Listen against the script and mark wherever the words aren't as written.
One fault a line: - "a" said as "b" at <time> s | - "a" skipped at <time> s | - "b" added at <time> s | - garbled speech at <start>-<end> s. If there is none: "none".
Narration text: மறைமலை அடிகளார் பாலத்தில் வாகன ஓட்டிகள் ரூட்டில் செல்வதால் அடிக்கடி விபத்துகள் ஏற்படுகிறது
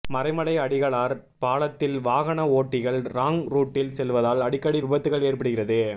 - "ராங்" added at 3.1 s